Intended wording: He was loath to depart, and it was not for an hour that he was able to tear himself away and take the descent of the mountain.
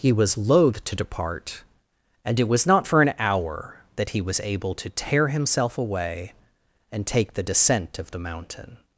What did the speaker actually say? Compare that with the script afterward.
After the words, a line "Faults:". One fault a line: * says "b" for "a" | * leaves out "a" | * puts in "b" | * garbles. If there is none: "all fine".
He was loath to depart, and it was not for an hour that he was able to tear himself away and take the descent of the mountain.
Faults:
all fine